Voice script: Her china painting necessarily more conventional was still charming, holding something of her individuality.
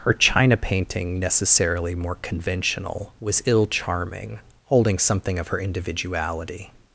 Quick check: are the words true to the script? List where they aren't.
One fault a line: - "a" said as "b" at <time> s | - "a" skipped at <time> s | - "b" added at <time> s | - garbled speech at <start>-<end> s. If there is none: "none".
- "still" said as "ill" at 3.4 s